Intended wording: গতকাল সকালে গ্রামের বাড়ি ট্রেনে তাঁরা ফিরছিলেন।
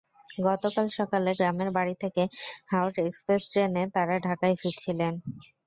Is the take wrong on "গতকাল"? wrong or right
right